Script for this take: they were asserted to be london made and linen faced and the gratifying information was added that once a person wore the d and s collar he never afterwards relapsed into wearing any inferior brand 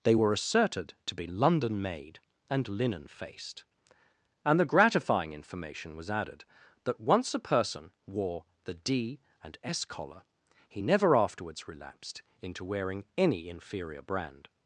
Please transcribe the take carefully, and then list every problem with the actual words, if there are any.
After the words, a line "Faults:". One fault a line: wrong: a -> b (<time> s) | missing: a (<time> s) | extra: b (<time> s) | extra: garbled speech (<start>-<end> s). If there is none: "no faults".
they were asserted to be london made and linen faced and the gratifying information was added that once a person wore the d and s collar he never afterwards relapsed into wearing any inferior brand
Faults:
no faults